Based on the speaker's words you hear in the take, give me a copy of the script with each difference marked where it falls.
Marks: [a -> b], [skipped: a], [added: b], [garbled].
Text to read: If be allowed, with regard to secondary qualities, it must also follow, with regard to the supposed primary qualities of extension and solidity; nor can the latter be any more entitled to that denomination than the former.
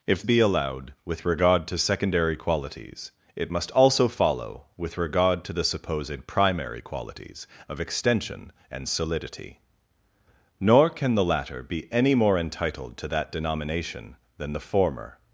If be allowed, with regard to secondary qualities, it must also follow, with regard to the supposed primary qualities of extension and solidity; nor can the latter be any more entitled to that denomination than the former.